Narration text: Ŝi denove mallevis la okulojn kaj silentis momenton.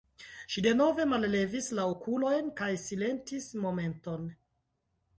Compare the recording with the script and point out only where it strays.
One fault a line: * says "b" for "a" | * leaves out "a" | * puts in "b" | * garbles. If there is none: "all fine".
all fine